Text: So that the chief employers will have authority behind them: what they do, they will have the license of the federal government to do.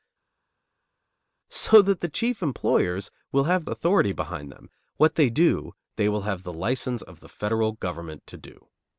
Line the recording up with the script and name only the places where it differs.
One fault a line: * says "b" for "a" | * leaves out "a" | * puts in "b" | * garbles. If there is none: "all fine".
all fine